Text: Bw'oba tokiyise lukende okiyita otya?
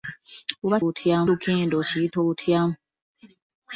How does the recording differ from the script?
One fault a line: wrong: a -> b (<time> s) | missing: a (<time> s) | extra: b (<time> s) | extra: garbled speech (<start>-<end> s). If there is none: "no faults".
wrong: tokiyise -> otya (0.9 s)